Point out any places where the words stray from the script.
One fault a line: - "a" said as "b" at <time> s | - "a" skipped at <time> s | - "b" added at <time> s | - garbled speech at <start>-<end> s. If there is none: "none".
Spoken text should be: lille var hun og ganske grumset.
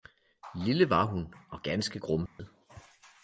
none